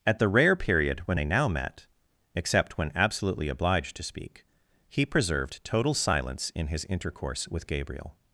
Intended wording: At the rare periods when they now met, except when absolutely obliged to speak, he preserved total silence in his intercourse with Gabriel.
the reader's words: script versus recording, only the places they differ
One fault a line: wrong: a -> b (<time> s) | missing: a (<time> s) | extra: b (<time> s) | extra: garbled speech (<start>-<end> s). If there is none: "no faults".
wrong: periods -> period (0.6 s)